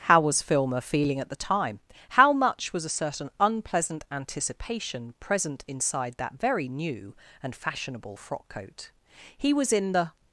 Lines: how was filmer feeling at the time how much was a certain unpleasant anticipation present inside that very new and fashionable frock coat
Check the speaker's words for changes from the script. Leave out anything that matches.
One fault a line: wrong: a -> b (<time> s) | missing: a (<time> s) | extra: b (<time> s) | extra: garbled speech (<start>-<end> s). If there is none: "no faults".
extra: he was in the (9.4 s)